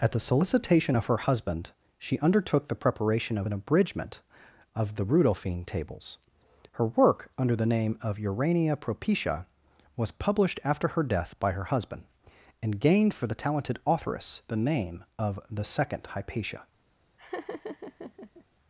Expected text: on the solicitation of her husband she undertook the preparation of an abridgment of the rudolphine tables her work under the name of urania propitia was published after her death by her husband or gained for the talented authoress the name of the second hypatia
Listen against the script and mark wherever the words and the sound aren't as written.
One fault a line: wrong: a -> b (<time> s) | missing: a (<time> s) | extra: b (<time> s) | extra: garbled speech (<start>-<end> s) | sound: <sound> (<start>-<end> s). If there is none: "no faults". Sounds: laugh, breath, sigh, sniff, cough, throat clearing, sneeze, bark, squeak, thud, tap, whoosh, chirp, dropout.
wrong: on -> at (0.0 s)
wrong: or -> and (12.6 s)
sound: laugh (17.2-18.4 s)